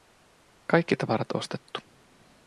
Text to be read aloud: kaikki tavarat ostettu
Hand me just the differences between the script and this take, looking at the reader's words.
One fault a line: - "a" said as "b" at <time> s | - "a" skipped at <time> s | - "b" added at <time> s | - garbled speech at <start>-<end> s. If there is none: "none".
none